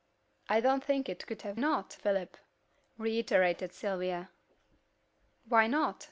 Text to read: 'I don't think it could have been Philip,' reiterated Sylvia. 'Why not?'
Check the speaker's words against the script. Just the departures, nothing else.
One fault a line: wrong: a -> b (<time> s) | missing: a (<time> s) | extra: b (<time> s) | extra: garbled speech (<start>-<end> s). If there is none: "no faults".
wrong: been -> not (1.6 s)